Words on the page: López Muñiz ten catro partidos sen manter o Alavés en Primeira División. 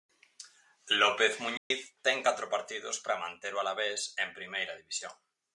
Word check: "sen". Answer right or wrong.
wrong